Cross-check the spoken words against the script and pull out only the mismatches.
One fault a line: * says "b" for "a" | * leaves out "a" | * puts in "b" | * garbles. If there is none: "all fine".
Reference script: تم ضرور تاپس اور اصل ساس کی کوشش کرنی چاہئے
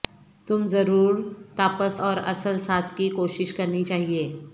all fine